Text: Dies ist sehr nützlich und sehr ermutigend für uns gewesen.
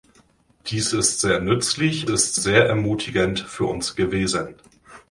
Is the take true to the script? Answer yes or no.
no